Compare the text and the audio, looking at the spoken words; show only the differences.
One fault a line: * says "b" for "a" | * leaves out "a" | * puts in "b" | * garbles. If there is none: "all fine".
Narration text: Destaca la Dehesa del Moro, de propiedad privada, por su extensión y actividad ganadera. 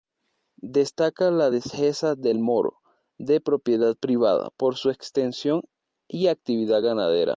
all fine